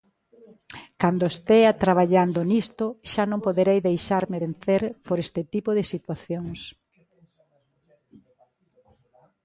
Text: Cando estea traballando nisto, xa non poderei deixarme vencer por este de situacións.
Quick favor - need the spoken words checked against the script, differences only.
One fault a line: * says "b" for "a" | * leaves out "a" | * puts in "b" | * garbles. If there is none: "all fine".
* puts in "tipo"